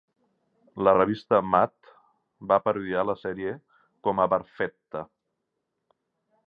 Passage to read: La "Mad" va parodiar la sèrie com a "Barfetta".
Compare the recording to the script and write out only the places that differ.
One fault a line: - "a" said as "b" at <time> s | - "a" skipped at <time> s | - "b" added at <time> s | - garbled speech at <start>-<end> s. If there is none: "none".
- "revista" added at 1.0 s